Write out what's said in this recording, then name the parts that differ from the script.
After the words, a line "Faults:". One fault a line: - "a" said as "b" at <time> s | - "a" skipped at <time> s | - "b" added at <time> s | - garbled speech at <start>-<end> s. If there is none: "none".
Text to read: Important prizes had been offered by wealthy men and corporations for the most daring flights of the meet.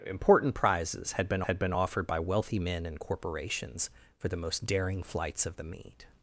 Important prizes had been had been offered by wealthy men and corporations for the most daring flights of the meet.
Faults:
- "had been" added at 1.4 s